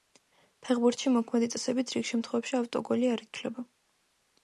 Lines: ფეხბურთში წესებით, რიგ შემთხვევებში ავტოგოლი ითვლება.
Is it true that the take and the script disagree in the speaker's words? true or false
true